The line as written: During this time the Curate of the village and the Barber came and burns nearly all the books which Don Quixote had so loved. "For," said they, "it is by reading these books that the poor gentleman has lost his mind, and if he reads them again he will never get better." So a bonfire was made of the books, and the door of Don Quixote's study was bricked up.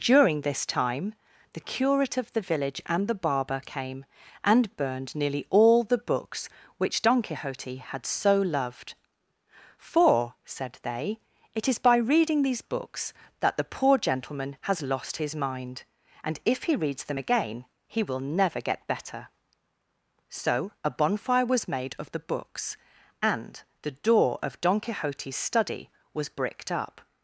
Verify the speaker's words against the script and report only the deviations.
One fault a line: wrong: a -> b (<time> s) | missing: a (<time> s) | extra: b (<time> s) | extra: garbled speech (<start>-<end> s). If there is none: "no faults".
wrong: burns -> burned (4.8 s)